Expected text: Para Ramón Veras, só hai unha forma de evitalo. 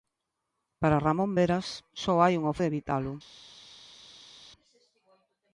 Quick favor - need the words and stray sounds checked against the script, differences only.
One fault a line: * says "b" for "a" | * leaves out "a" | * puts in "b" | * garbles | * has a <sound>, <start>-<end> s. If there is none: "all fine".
* leaves out "forma"